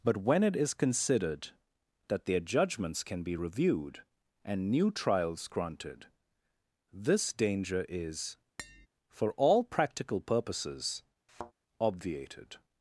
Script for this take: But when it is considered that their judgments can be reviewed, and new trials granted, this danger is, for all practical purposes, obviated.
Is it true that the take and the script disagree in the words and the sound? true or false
true